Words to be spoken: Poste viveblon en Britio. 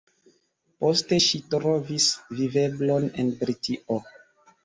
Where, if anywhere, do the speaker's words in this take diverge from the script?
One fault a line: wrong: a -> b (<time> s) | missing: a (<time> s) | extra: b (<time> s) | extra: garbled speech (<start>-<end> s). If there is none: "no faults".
extra: ŝi trovis (1.2 s)